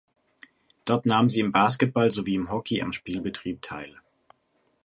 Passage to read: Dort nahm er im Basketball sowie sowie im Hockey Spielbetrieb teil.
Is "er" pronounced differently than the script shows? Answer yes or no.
yes